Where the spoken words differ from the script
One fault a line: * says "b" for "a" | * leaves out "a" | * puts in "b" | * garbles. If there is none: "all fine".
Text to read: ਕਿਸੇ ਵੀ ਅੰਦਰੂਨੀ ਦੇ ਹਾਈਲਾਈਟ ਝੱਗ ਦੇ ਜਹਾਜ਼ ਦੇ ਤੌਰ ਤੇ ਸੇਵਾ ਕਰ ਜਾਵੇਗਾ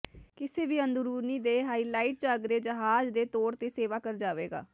all fine